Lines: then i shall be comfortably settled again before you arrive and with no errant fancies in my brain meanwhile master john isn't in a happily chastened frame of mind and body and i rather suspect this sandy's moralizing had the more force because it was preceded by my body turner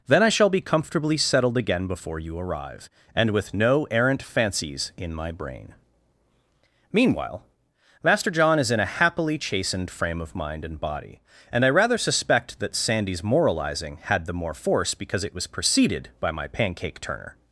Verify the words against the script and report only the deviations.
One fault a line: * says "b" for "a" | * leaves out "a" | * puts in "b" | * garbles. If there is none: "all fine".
* says "is" for "isn't"
* says "that" for "this"
* says "pancake" for "body"